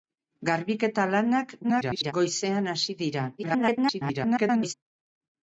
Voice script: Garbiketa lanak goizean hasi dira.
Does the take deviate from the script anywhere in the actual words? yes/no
yes